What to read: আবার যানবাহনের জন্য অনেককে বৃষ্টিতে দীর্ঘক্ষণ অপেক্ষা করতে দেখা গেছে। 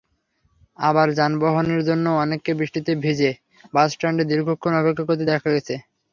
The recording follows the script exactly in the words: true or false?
false